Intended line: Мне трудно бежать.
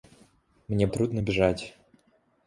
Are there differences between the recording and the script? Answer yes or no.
no